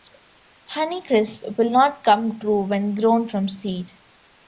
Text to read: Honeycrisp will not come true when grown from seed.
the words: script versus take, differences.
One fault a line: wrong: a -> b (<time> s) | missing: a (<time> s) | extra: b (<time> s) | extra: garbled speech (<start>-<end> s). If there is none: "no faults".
no faults